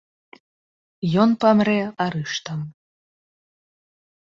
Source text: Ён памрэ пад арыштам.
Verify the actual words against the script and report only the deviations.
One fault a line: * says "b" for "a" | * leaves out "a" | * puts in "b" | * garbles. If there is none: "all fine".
* leaves out "пад"